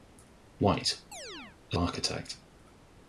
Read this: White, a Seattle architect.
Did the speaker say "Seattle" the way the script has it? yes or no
no